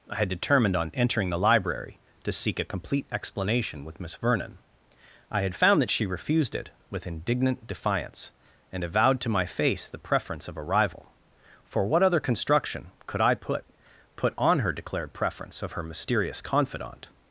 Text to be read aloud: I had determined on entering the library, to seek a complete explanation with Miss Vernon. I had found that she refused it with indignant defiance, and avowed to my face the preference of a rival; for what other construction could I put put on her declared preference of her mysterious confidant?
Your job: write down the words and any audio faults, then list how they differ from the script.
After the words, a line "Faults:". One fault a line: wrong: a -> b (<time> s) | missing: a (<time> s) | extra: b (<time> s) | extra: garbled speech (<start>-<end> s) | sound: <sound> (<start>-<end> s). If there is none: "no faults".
I had determined on entering the library, to seek a complete explanation with Miss Vernon. I had found that she refused it with indignant defiance, and avowed to my face the preference of a rival; for what other construction could I put put on her declared preference of her mysterious confidant?
Faults:
no faults